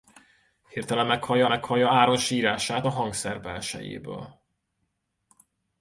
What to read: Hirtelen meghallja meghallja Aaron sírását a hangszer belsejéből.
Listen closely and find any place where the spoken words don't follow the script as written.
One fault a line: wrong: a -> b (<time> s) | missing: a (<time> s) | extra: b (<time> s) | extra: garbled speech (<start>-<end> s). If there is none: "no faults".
no faults